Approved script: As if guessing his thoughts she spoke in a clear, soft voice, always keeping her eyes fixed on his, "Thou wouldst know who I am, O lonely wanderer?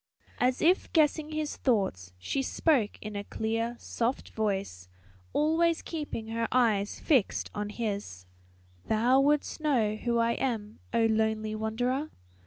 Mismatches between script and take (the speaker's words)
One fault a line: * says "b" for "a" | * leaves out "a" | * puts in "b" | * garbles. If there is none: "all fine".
all fine